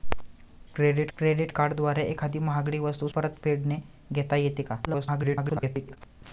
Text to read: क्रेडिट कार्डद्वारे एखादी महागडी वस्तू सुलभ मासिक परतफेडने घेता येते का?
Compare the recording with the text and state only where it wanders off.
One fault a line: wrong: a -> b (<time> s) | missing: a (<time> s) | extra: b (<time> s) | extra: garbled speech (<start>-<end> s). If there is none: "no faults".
extra: क्रेडिट (1.2 s)
missing: सुलभ मासिक (3.1 s)
extra: garbled speech (4.9-6.0 s)